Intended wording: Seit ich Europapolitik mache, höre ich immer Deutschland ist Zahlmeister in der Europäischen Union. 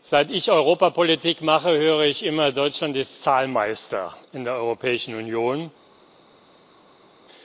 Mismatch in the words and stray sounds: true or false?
false